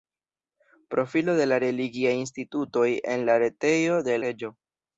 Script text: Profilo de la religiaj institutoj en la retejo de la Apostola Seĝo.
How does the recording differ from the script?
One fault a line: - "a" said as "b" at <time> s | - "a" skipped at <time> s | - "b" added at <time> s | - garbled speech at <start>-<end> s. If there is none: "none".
- "la Apostola" skipped at 4.2 s